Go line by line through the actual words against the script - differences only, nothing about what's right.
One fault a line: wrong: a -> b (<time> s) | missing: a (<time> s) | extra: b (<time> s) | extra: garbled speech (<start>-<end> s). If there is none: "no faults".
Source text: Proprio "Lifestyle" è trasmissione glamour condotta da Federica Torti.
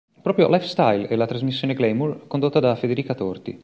extra: la (1.2 s)